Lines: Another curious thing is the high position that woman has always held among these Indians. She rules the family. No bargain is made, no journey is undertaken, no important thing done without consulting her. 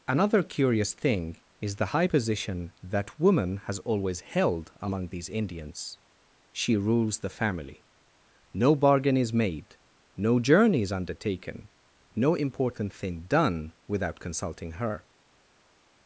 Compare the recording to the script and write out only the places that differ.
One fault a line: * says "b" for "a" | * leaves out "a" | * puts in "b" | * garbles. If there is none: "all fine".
all fine